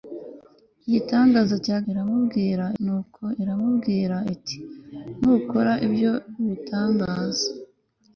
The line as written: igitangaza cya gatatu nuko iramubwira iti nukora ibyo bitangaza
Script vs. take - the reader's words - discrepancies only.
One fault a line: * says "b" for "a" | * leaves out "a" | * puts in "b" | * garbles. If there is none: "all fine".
* says "iramubwira" for "gatatu"